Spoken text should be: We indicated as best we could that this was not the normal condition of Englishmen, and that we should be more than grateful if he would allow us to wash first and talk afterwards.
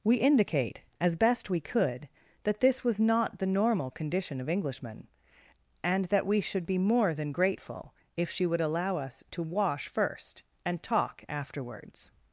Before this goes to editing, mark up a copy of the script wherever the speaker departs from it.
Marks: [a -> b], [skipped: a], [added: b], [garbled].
We [indicated -> indicate] as best we could that this was not the normal condition of Englishmen, and that we should be more than grateful if [he -> she] would allow us to wash first and talk afterwards.